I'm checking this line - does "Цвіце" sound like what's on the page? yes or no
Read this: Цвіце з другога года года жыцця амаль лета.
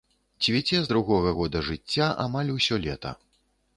yes